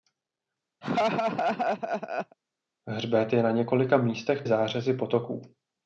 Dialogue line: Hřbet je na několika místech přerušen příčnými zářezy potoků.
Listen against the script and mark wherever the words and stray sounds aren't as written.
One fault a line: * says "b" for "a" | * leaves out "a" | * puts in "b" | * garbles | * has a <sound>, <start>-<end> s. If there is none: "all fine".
* has a laugh, 0.8-2.4 s
* leaves out "přerušen příčnými"